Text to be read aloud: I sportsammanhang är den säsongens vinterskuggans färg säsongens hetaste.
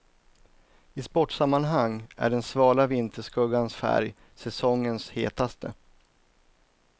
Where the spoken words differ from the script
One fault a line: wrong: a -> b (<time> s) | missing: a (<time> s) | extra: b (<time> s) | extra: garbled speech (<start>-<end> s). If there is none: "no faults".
wrong: säsongens -> svala (2.4 s)